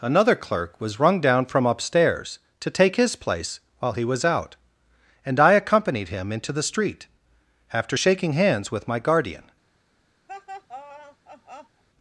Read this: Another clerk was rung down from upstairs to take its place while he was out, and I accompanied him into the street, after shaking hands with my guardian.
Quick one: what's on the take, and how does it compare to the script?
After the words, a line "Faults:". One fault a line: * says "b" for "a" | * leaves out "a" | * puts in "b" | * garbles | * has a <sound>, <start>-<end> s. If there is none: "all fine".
Another clerk was rung down from upstairs to take his place while he was out, and I accompanied him into the street, after shaking hands with my guardian.
Faults:
* says "his" for "its"
* has a laugh, 10.3-11.8 s